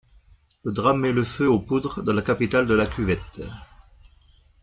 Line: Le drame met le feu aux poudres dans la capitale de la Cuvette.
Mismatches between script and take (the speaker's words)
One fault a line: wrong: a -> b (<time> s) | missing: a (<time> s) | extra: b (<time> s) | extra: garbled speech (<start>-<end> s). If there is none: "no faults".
no faults